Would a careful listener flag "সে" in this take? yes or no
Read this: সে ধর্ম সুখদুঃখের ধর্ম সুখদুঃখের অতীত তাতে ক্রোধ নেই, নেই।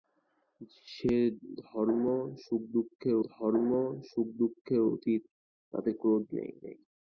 no